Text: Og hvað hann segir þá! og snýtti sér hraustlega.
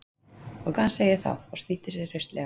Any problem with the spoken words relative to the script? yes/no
no